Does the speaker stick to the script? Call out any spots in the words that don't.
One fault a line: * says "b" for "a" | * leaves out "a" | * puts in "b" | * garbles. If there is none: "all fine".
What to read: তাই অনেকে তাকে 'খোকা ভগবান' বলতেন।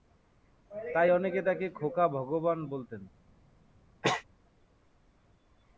all fine